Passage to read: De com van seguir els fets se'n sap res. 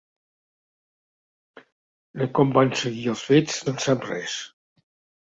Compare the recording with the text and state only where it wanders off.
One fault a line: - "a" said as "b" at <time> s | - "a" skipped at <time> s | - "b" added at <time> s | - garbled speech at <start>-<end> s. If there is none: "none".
none